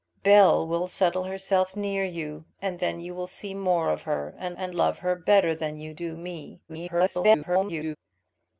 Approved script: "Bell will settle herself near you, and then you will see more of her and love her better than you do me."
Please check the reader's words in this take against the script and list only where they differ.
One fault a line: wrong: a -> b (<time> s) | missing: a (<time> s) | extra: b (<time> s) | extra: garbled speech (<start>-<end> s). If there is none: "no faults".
extra: and (4.6 s)
extra: garbled speech (6.7-8.0 s)